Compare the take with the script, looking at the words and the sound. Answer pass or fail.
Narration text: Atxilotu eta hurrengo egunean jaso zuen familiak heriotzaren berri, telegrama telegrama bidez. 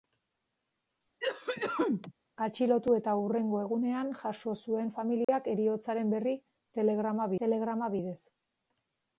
fail